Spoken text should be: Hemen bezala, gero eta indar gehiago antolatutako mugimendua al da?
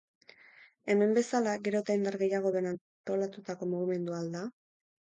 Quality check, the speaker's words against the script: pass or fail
fail